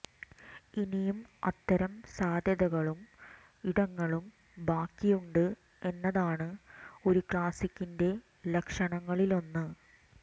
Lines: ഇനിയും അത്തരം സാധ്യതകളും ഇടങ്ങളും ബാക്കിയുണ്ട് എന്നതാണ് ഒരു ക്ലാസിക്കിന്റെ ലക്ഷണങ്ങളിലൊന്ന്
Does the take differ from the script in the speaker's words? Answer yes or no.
no